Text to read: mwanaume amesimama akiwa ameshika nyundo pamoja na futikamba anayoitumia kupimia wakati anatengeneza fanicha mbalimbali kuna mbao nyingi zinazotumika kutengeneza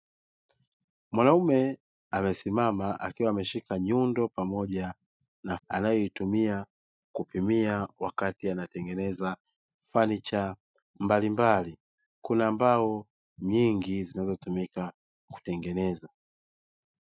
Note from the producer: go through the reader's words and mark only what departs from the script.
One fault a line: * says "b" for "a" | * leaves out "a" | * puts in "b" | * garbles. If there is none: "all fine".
* leaves out "futikamba"